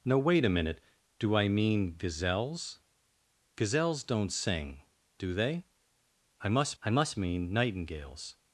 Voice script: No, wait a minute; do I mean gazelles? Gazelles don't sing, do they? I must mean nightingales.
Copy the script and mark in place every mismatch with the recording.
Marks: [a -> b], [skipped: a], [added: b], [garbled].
No, wait a minute; do I mean gazelles? Gazelles don't sing, do they? I must [added: I must] mean nightingales.